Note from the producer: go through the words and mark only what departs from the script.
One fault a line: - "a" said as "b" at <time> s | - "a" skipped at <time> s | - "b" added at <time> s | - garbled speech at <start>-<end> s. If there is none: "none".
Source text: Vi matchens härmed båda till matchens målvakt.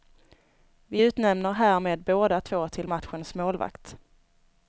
- "matchens" said as "utnämner" at 1.0 s
- "två" added at 2.4 s